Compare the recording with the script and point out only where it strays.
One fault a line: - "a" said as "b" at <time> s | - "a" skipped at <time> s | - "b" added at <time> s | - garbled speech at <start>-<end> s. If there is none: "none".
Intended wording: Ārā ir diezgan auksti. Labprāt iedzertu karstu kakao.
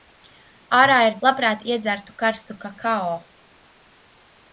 - "diezgan auksti" skipped at 1.2 s